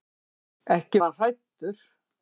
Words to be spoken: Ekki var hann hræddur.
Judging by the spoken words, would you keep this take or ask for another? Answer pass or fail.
fail